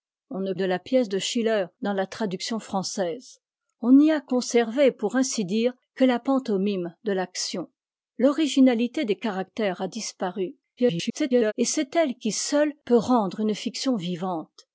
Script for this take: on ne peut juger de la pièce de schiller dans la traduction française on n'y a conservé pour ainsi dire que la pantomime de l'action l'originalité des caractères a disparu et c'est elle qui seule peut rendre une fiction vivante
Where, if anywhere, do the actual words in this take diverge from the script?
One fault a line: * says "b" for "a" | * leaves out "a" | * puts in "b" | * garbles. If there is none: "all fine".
* leaves out "peut juger"
* garbles